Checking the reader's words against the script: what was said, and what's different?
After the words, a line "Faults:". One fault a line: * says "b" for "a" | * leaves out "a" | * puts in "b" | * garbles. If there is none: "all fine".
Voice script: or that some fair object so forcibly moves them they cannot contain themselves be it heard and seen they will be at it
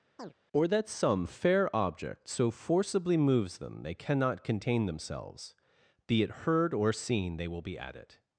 or that some fair object so forcibly moves them they cannot contain themselves be it heard or seen they will be at it
Faults:
* says "or" for "and"